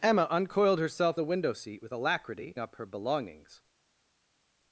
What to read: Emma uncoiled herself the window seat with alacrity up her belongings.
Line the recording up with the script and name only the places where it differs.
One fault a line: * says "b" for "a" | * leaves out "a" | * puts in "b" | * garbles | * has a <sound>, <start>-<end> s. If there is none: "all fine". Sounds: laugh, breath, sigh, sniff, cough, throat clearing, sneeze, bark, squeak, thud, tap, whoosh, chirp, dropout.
all fine